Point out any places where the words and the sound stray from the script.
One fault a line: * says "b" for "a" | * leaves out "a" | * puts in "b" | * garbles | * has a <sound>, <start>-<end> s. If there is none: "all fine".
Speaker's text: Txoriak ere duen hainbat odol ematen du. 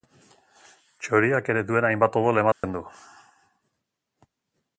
* has a dropout, 2.5-2.6 s